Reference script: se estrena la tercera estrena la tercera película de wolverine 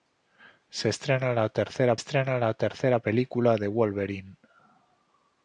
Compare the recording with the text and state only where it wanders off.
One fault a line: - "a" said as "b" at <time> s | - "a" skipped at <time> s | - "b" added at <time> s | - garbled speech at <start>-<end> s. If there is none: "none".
none